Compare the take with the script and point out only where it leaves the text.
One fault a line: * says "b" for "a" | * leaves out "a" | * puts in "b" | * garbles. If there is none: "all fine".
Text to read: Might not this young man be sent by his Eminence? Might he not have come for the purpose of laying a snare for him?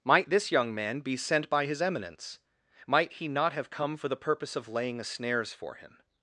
* leaves out "not"
* says "snares" for "snare"